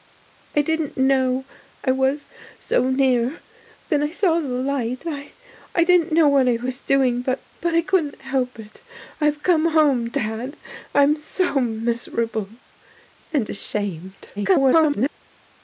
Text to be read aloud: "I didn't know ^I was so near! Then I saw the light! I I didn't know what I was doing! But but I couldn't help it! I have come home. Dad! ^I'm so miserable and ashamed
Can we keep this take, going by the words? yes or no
no